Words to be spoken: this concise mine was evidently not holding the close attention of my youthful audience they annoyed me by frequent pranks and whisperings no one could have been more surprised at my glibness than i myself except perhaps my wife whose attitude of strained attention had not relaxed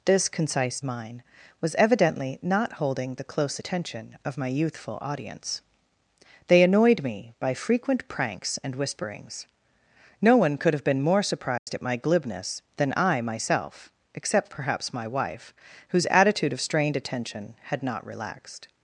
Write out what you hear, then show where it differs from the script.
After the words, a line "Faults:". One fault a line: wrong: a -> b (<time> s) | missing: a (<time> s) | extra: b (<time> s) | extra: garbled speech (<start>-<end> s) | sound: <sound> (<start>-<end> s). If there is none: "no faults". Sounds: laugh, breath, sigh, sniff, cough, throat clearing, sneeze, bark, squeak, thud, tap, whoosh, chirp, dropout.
this concise mine was evidently not holding the close attention of my youthful audience they annoyed me by frequent pranks and whisperings no one could have been more surprised at my glibness than i myself except perhaps my wife whose attitude of strained attention had not relaxed
Faults:
sound: dropout (11.6-11.7 s)